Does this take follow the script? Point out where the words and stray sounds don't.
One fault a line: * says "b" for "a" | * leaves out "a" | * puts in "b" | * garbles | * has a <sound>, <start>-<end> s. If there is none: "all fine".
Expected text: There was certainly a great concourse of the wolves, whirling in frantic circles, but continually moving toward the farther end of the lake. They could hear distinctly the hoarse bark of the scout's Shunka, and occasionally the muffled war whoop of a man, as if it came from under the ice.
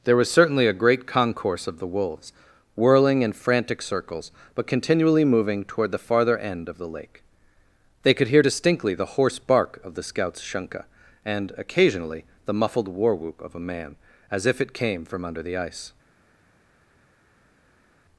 all fine